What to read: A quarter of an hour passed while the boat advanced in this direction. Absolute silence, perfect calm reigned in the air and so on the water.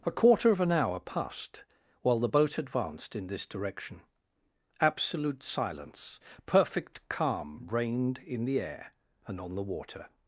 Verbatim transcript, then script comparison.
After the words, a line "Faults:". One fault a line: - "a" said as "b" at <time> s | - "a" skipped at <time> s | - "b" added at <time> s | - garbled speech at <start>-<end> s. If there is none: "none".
A quarter of an hour passed while the boat advanced in this direction. Absolute silence, perfect calm reigned in the air and on the water.
Faults:
- "so" skipped at 9.4 s